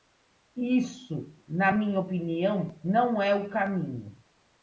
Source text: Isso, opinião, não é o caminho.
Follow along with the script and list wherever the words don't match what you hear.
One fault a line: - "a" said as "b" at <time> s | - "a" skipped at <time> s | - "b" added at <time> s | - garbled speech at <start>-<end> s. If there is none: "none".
- "na minha" added at 1.5 s